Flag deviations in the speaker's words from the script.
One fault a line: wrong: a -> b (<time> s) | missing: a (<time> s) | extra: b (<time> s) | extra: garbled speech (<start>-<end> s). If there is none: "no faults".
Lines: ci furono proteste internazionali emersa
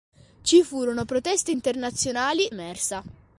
no faults